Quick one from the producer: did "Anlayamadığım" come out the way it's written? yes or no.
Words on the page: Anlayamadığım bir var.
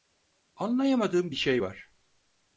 yes